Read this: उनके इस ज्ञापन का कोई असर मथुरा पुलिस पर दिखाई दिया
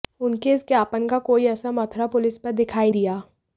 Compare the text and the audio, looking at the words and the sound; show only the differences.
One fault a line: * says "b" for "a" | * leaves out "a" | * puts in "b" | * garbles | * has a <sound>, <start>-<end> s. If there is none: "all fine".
all fine